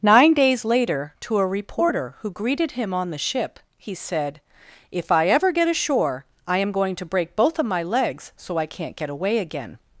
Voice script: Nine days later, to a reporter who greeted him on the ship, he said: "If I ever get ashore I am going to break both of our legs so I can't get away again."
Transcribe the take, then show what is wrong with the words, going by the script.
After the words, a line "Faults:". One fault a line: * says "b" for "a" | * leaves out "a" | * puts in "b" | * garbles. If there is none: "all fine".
Nine days later, to a reporter who greeted him on the ship, he said: "If I ever get ashore I am going to break both of my legs so I can't get away again."
Faults:
* says "my" for "our"